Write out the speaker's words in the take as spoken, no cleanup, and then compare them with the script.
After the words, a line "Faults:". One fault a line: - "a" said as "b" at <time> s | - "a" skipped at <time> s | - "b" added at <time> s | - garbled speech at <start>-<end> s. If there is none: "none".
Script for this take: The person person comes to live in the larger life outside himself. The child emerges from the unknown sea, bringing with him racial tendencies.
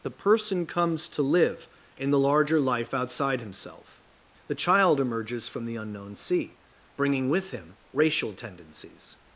The person comes to live in the larger life outside himself. The child emerges from the unknown sea, bringing with him racial tendencies.
Faults:
- "person" skipped at 0.7 s